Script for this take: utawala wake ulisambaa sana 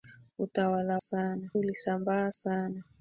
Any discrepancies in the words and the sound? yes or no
yes